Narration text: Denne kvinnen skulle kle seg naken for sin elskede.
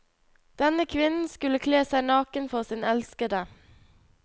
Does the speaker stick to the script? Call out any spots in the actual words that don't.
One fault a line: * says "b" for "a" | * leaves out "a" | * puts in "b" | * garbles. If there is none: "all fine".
all fine